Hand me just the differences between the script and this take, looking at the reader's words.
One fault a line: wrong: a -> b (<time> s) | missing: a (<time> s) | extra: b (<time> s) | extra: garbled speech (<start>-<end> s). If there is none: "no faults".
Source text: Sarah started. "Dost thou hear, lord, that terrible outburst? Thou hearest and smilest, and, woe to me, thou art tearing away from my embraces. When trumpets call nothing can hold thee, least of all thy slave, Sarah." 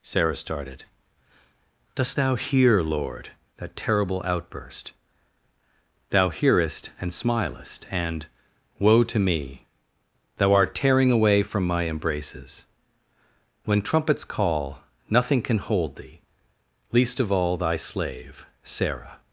no faults